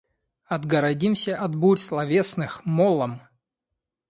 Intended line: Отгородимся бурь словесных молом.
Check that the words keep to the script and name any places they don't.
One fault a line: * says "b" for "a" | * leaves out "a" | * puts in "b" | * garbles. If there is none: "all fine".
* puts in "от"